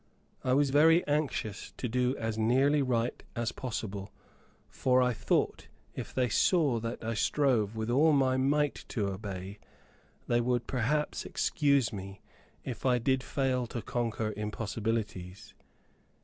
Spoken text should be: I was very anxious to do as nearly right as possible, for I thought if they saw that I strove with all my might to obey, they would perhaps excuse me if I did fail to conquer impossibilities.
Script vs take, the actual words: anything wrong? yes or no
no